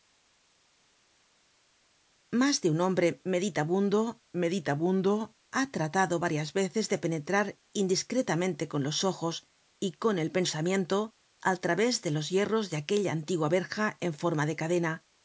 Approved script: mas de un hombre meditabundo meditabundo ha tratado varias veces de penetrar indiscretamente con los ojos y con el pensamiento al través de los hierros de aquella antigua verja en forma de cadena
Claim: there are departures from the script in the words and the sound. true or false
false